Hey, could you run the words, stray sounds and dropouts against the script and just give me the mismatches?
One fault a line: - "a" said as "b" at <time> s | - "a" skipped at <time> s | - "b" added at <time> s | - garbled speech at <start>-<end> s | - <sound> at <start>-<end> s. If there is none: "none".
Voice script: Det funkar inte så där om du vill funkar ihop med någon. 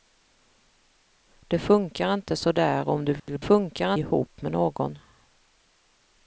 - dropout at 3.2-3.3 s